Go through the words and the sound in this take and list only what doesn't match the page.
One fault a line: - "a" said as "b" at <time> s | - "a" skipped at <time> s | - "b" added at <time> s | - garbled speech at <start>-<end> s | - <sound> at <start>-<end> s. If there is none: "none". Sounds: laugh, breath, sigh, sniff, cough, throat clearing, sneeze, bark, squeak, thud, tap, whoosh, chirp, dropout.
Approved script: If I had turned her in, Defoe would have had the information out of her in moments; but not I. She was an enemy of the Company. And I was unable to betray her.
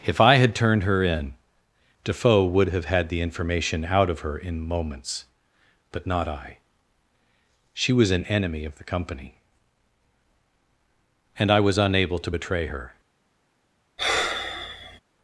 - sigh at 14.0-15.0 s